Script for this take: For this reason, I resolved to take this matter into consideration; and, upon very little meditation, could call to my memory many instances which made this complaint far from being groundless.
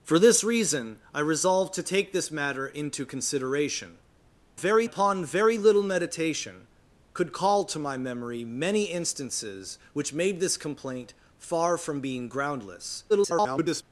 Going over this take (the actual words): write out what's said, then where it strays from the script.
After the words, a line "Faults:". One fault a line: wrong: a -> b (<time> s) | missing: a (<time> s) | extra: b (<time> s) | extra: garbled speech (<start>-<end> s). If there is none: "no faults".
For this reason, I resolved to take this matter into consideration; very, upon very little meditation, could call to my memory many instances which made this complaint far from being groundless. [garbled]
Faults:
wrong: and -> very (4.5 s)
extra: garbled speech (13.1-13.8 s)